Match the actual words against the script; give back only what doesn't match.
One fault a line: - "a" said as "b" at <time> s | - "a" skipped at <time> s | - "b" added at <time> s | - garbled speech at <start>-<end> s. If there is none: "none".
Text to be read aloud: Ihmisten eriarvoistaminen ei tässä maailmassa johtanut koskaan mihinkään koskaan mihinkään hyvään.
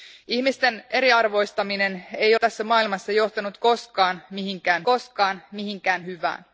none